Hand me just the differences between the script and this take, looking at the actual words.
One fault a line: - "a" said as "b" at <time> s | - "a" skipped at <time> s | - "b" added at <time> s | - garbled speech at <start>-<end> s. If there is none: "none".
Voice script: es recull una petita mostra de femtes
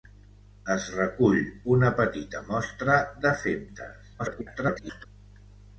- garbled speech at 4.2-5.1 s